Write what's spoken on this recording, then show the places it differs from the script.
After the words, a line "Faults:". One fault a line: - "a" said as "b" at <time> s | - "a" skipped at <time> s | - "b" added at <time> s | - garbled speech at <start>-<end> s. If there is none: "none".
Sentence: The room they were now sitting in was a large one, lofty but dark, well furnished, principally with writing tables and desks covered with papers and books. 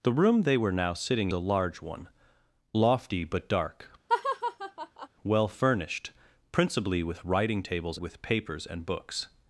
The room they were now sitting a large one, lofty but dark, well furnished, principally with writing tables with papers and books.
Faults:
- "in was" skipped at 1.3 s
- "and desks covered" skipped at 8.0 s